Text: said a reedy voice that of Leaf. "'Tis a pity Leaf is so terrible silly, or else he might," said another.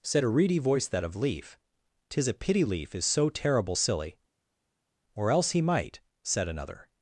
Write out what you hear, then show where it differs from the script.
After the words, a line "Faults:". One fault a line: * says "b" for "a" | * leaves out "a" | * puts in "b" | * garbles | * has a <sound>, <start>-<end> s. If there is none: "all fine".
said a reedy voice that of Leaf. "'Tis a pity Leaf is so terrible silly, or else he might," said another.
Faults:
all fine